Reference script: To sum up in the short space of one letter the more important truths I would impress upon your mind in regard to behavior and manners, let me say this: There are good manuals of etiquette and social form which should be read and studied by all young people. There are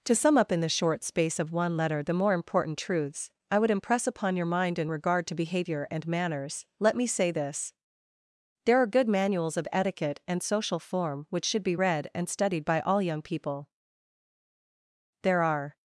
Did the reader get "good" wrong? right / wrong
right